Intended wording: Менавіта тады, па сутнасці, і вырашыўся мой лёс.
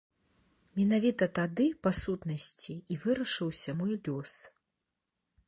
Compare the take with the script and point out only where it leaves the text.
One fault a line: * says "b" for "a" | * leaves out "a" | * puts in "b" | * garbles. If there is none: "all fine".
all fine